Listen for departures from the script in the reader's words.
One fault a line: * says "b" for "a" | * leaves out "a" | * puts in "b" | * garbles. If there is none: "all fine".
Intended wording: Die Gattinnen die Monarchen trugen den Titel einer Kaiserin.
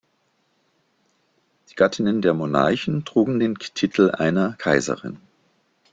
* says "der" for "die"